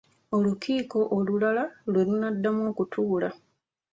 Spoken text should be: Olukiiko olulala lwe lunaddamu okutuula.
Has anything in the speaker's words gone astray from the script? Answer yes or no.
no